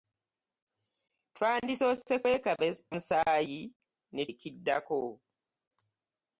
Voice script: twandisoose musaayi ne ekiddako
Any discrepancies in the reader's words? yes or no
no